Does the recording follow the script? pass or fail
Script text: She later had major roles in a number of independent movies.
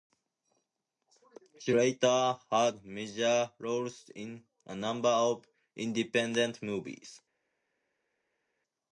pass